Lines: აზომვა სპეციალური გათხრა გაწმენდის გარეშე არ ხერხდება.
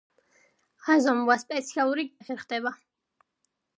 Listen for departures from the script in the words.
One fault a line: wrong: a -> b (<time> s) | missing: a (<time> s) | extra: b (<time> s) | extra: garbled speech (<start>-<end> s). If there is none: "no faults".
missing: გათხრა გაწმენდის გარეშე (2.1 s)